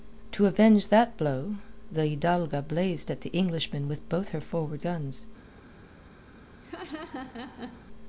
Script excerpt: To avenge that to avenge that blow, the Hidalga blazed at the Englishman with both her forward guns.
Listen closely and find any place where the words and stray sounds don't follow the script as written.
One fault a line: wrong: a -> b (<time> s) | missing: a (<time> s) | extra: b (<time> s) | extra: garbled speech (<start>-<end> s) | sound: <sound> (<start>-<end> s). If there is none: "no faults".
missing: to avenge that (1.1 s)
sound: laugh (6.6-7.9 s)